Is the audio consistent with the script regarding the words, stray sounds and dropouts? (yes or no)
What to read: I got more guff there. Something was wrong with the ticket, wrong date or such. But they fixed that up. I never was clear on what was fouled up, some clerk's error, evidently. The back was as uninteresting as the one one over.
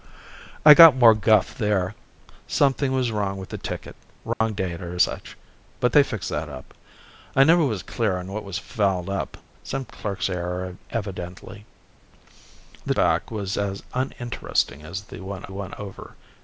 no